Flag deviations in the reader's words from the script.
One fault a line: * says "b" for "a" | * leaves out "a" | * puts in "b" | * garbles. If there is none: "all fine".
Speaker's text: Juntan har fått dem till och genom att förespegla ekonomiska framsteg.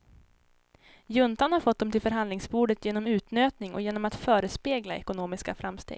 * puts in "förhandlingsbordet genom utnötning"